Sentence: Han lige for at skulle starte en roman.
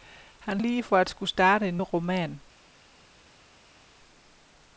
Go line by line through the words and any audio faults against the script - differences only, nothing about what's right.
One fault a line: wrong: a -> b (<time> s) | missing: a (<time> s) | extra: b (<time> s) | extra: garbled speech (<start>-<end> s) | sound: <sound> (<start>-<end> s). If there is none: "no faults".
no faults